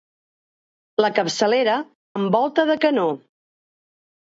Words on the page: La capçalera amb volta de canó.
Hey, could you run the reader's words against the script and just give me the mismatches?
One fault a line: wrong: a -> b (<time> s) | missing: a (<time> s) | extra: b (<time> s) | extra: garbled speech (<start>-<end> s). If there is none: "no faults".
no faults